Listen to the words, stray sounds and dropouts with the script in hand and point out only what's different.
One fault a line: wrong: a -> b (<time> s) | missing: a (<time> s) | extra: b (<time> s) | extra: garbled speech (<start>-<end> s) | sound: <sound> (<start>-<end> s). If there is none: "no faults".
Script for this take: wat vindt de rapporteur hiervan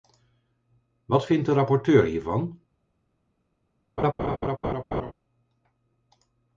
sound: laugh (4.0-5.1 s)